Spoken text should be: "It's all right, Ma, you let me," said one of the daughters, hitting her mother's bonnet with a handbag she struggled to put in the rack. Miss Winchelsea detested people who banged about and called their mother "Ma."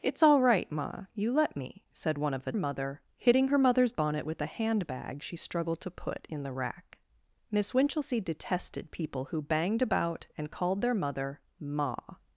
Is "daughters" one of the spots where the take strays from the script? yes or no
yes